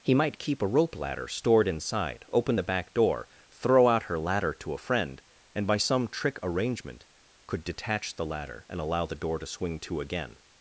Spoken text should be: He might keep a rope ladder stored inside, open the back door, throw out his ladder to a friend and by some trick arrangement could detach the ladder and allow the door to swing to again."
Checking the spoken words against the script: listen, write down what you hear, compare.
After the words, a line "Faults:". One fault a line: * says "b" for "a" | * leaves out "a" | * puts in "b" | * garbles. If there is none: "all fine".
He might keep a rope ladder stored inside, open the back door, throw out her ladder to a friend and by some trick arrangement could detach the ladder and allow the door to swing to again."
Faults:
* says "her" for "his"